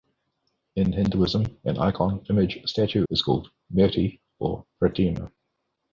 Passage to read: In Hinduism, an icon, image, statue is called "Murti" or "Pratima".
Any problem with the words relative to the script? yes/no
no